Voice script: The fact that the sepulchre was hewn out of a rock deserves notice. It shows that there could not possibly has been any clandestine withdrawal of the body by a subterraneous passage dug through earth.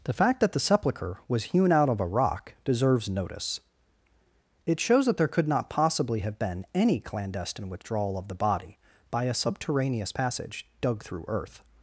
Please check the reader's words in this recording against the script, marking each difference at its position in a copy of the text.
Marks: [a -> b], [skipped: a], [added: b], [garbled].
The fact that the sepulchre was hewn out of a rock deserves notice. It shows that there could not possibly [has -> have] been any clandestine withdrawal of the body by a subterraneous passage dug through earth.